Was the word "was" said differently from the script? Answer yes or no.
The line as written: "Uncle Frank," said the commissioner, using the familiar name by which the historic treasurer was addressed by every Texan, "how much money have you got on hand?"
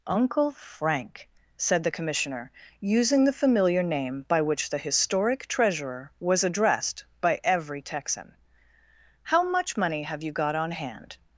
no